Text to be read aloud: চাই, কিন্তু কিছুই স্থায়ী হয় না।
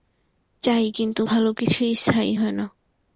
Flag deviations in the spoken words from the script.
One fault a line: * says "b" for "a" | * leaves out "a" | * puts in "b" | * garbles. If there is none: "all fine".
* puts in "ভালো"